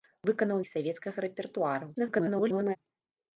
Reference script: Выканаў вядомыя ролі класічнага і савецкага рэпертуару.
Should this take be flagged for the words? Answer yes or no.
yes